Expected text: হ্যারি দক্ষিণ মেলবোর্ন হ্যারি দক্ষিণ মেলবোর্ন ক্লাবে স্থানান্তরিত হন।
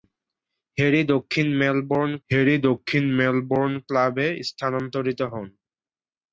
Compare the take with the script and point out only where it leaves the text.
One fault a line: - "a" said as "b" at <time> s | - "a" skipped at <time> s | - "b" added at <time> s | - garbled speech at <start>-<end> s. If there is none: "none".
none